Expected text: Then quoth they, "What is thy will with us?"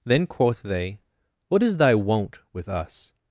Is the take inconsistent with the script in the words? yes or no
yes